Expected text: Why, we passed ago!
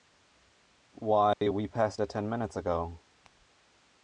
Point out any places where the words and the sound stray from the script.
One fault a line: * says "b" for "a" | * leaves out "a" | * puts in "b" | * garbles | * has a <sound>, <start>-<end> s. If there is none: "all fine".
* has a dropout, 1.3-1.4 s
* puts in "it ten minutes"